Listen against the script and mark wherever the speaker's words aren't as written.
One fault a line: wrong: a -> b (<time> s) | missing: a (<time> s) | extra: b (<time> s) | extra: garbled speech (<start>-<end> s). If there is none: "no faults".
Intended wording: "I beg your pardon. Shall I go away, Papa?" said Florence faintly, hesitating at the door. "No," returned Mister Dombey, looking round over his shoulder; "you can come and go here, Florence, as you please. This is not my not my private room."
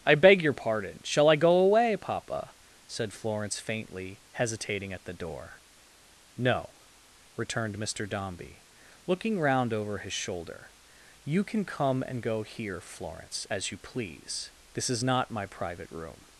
missing: not my (15.5 s)